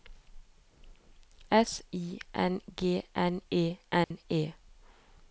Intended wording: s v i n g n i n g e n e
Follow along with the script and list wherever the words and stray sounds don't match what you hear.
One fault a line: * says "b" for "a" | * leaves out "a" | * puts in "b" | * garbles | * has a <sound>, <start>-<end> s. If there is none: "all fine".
* leaves out "v"
* leaves out "i n g"
* has a dropout, 4.0-4.1 s